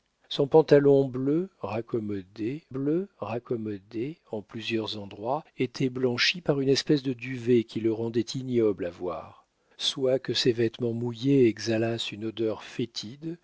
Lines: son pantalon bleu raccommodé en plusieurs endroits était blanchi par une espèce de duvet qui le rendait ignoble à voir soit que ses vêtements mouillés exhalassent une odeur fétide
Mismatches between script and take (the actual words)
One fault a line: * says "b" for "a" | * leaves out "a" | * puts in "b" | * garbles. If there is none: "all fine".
* puts in "bleu raccommodé"